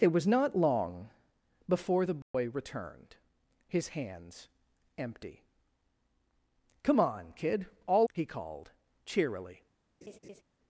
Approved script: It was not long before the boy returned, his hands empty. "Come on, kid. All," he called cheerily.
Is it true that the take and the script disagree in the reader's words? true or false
false